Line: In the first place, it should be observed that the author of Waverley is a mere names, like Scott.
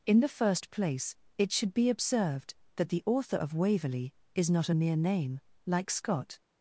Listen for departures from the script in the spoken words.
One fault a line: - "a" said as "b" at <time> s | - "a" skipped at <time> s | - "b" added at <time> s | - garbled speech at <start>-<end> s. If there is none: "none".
- "not" added at 4.5 s
- "names" said as "name" at 4.9 s